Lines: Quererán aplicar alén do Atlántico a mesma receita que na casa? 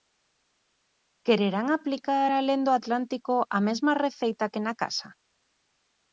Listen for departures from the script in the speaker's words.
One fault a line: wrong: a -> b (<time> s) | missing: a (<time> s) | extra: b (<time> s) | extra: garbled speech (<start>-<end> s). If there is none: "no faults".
no faults